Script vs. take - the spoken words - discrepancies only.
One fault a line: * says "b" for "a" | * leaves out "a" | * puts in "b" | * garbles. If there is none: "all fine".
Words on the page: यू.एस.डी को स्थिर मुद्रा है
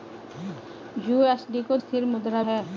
all fine